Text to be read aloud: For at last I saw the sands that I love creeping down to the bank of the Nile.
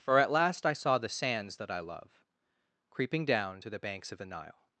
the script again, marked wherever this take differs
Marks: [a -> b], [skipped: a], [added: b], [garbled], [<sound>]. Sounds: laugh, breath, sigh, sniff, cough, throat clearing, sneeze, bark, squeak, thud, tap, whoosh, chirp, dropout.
For at last I saw the sands that I love creeping down to the [bank -> banks] of the Nile.